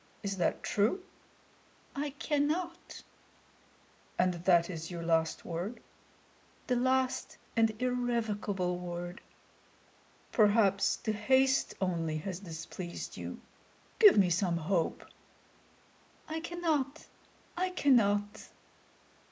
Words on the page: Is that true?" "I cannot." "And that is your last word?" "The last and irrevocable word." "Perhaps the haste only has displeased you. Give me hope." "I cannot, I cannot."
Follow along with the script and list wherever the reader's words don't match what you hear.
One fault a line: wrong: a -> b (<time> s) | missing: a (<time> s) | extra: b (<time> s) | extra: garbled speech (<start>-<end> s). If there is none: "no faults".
extra: some (14.3 s)